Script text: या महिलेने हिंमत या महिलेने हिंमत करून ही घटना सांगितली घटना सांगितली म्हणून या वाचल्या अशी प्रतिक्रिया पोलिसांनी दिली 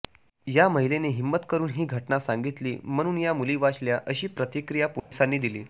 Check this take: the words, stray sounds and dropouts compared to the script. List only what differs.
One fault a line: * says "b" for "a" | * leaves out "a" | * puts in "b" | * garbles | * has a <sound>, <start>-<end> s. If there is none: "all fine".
* leaves out "या महिलेने हिंमत"
* leaves out "घटना सांगितली"
* puts in "मुली"
* has a dropout, 5.0-5.1 s